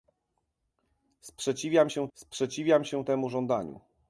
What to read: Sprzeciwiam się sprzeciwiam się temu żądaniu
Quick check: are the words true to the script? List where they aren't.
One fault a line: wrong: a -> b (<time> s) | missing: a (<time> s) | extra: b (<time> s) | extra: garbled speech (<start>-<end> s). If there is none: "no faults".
no faults